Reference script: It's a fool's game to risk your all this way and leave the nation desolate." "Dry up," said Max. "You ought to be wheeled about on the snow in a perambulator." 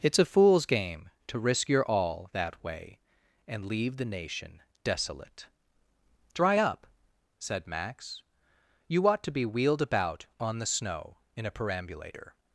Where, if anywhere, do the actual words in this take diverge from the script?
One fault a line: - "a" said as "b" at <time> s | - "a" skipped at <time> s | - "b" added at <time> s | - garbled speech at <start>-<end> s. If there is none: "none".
- "this" said as "that" at 2.3 s